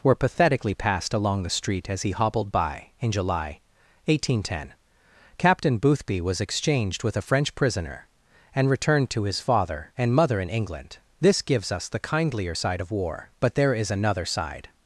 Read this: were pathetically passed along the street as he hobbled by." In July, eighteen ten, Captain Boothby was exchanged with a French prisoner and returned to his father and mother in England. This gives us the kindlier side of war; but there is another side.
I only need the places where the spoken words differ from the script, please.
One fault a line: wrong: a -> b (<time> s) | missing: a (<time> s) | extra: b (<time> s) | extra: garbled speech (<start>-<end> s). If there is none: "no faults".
no faults